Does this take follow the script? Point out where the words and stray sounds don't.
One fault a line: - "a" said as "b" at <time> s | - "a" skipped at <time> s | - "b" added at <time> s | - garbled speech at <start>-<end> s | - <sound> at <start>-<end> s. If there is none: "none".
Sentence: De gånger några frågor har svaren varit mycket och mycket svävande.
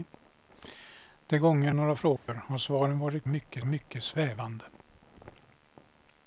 - dropout at 2.2-2.3 s